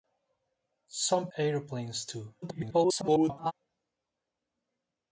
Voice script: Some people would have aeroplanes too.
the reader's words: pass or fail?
fail